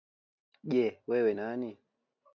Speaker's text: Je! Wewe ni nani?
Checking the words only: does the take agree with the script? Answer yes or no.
no